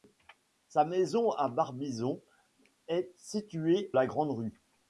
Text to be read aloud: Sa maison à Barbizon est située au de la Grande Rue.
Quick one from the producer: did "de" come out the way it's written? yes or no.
no